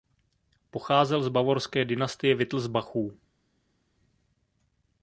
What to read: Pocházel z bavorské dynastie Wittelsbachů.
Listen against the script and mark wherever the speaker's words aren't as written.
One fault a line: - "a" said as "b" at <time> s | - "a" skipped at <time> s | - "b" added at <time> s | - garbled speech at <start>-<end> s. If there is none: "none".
none